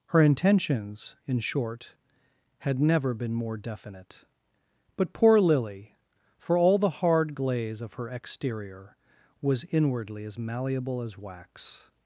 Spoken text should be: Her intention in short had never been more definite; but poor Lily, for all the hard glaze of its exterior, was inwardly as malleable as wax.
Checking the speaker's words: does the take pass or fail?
fail